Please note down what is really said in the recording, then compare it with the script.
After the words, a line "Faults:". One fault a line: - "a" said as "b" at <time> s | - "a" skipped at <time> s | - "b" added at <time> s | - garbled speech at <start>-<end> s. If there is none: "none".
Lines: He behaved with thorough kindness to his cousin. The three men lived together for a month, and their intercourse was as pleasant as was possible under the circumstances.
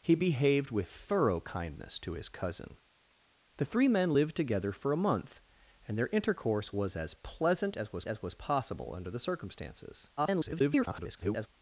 He behaved with thorough kindness to his cousin. The three men lived together for a month, and their intercourse was as pleasant as was as was possible under the circumstances. [garbled]
Faults:
- "as was" added at 8.1 s
- garbled speech at 10.2-11.5 s